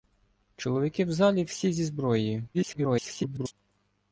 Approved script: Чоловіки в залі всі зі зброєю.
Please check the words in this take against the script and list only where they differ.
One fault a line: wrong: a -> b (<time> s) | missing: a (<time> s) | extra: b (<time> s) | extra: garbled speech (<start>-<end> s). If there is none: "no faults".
extra: garbled speech (2.5-3.5 s)